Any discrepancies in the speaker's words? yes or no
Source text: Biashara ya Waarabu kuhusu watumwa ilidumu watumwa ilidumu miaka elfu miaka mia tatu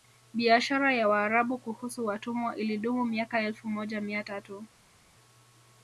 yes